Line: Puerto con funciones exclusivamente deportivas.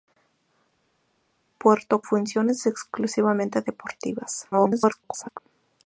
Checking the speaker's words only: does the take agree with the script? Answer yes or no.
no